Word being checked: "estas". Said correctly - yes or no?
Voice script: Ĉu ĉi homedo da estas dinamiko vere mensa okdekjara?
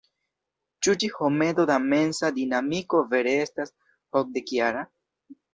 no